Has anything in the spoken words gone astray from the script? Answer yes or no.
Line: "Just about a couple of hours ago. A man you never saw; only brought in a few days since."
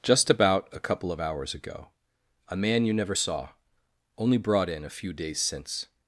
no